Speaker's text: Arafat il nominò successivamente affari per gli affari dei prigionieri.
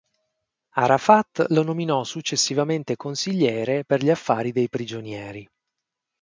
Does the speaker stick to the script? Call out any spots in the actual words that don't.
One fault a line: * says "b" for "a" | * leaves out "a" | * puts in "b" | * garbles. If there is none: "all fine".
* says "lo" for "il"
* says "consigliere" for "affari"